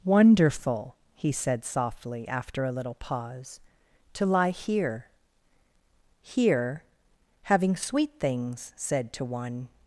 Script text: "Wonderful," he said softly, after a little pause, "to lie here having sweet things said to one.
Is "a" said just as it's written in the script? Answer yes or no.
yes